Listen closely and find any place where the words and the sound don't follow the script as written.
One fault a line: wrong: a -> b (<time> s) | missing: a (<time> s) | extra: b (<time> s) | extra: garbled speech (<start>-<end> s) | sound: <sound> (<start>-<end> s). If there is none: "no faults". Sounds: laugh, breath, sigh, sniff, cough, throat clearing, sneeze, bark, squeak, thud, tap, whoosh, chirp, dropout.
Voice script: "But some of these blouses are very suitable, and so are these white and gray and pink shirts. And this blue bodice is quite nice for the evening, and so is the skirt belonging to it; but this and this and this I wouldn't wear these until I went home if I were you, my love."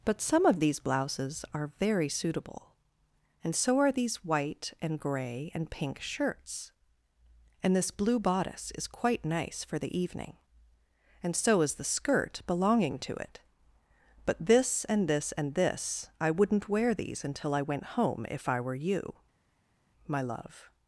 no faults